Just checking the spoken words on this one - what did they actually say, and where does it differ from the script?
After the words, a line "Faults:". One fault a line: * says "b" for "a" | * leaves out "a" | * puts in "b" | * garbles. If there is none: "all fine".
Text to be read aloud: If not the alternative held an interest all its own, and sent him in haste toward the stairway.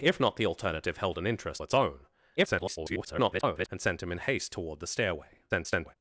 If not the alternative held an interest its own, [garbled] and sent him in haste toward the stairway. [garbled]
Faults:
* leaves out "all"
* garbles
* garbles